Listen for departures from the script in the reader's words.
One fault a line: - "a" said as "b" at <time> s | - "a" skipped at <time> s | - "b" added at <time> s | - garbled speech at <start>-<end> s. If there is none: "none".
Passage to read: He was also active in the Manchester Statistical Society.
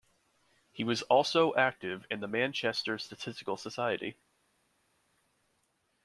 none